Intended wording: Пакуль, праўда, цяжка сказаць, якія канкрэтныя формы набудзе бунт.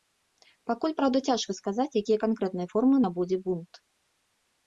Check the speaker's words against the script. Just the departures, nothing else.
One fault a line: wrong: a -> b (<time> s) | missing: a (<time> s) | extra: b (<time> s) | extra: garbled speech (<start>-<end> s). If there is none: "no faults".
no faults